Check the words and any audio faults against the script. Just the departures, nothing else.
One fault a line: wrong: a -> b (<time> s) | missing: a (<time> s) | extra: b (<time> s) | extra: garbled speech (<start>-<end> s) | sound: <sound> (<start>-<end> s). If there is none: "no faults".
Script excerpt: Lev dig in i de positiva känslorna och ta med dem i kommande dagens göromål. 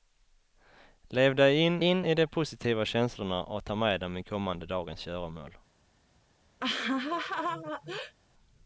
extra: in (1.8 s)
sound: laugh (6.6-8.1 s)